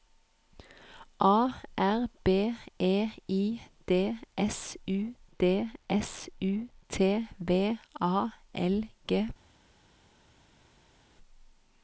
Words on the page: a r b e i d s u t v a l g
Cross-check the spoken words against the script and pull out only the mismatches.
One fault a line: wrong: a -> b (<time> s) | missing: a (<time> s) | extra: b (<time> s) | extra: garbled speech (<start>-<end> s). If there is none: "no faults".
extra: d s u (5.4 s)